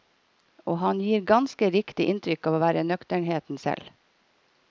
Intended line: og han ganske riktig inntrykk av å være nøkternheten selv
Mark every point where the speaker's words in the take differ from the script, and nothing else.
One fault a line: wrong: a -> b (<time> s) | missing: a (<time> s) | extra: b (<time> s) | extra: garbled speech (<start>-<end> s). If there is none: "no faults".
extra: gir (1.1 s)